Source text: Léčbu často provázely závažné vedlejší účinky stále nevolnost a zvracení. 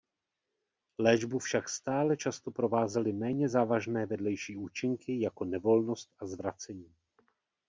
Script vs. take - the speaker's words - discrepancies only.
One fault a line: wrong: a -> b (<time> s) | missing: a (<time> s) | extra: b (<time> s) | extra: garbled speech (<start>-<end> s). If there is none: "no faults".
extra: však stále (1.4 s)
extra: méně (3.1 s)
wrong: stále -> jako (5.2 s)